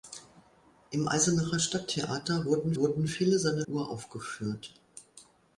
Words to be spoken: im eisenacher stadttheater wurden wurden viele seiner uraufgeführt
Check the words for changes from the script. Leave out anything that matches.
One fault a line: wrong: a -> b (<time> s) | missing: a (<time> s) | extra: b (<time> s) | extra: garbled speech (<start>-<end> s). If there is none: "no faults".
no faults